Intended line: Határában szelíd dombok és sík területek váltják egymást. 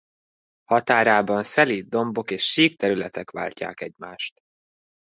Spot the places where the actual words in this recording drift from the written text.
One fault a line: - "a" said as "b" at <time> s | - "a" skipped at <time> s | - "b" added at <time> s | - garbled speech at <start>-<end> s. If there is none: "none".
none